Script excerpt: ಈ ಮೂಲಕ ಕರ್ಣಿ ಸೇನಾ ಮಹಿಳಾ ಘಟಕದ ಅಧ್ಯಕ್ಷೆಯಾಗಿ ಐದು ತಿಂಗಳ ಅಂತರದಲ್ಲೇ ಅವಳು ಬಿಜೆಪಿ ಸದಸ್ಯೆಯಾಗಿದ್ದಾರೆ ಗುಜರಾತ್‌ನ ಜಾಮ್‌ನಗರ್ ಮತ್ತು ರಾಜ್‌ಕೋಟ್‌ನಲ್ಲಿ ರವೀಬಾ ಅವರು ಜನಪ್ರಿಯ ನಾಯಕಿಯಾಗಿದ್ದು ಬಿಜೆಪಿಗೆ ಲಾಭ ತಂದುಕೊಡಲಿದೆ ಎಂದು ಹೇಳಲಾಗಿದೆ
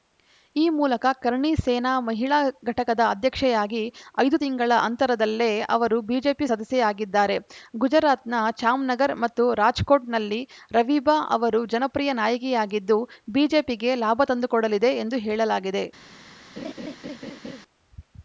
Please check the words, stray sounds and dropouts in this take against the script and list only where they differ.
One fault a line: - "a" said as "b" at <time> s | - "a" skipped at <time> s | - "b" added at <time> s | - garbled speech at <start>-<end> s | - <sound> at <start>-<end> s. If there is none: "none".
- "ಅವಳು" said as "ಅವರು" at 5.7 s
- laugh at 16.6-17.6 s